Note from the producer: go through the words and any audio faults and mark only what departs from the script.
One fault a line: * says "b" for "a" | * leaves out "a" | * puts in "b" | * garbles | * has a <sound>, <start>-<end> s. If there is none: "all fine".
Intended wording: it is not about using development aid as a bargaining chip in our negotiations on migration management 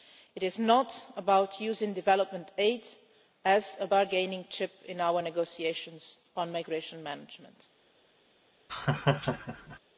* has a laugh, 8.7-9.8 s